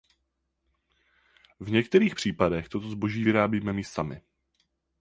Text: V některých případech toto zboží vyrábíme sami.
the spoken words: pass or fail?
fail